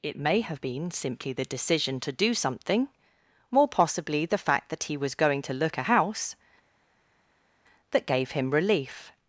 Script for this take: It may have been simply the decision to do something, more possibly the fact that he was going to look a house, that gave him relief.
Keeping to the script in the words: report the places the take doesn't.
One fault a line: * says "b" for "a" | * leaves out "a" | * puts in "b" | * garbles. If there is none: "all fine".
all fine